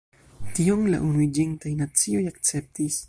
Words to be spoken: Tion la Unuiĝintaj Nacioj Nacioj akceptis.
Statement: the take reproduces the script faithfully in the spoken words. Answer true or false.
false